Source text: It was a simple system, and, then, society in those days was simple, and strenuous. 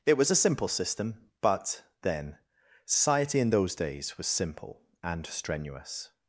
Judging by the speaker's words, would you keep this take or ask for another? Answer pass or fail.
fail